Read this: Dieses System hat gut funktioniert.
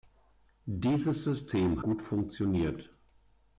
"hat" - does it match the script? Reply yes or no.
no